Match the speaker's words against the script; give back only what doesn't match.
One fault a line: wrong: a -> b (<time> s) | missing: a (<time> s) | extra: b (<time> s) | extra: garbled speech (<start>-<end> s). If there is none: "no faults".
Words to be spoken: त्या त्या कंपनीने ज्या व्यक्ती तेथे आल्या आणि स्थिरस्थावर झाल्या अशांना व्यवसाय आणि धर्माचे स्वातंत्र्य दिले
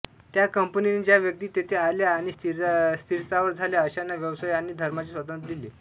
missing: त्या (0.5 s)